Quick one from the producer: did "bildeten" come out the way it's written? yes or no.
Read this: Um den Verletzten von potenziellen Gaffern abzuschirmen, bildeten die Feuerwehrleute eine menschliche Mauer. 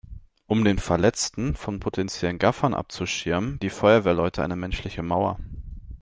no